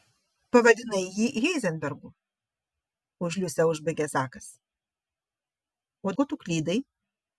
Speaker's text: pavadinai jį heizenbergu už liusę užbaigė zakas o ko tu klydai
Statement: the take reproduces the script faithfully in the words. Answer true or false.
true